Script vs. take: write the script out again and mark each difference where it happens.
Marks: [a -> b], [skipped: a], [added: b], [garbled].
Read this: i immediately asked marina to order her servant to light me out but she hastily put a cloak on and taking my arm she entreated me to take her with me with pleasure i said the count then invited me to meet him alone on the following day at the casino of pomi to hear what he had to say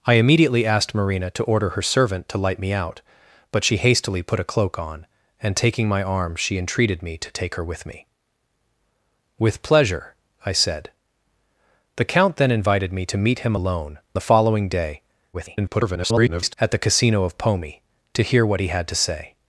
i immediately asked marina to order her servant to light me out but she hastily put a cloak on and taking my arm she entreated me to take her with me with pleasure i said the count then invited me to meet him alone [skipped: on] the following day [garbled] at the casino of pomi to hear what he had to say